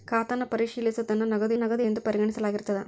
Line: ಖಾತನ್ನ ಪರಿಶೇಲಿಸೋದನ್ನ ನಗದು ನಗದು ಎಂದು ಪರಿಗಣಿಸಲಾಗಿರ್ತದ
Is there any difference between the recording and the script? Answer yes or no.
no